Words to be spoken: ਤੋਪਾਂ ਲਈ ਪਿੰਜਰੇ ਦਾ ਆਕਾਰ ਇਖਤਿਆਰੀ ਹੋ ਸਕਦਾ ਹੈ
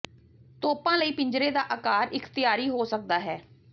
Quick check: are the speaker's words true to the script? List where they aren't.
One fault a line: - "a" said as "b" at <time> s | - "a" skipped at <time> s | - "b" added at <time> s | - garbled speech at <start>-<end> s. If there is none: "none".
none